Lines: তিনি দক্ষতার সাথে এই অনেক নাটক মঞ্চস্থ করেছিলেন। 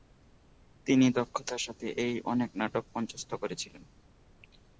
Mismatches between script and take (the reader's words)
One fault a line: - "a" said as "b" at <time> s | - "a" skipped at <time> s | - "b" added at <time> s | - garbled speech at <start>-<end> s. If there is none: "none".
none